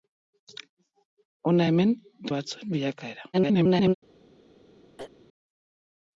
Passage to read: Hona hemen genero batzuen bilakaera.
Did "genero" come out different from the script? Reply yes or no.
yes